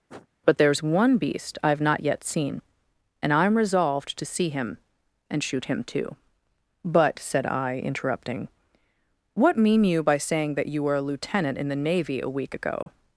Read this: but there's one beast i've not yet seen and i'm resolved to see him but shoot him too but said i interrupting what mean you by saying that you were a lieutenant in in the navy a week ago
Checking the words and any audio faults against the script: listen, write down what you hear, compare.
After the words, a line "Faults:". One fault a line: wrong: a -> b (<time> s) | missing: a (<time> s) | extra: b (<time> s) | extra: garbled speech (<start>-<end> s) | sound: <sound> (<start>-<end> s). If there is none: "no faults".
but there's one beast i've not yet seen and i'm resolved to see him and shoot him too but said i interrupting what mean you by saying that you were a lieutenant in the navy a week ago
Faults:
sound: sniff (0.1-0.3 s)
wrong: but -> and (5.3 s)
missing: in (11.7 s)
sound: dropout (12.8-12.9 s)